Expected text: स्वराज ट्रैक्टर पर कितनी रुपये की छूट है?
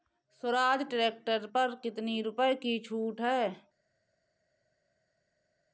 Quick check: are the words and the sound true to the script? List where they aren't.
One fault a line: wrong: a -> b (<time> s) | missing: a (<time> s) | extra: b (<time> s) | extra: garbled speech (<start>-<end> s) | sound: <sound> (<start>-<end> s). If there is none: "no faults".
no faults